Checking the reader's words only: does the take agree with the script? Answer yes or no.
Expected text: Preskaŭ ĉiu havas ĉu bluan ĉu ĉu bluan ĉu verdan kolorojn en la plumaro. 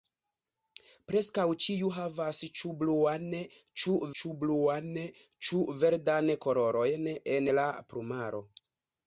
yes